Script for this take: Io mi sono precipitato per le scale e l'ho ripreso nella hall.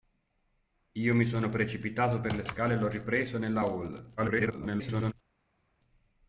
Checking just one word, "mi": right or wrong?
right